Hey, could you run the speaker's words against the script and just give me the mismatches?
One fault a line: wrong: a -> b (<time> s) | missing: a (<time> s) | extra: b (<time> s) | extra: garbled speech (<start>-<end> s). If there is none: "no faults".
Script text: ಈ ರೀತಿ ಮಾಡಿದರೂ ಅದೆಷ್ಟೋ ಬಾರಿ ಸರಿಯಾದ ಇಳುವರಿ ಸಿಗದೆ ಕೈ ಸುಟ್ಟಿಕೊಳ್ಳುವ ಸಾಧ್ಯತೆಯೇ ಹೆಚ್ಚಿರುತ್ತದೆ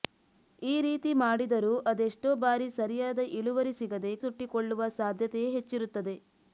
missing: ಕೈ (4.1 s)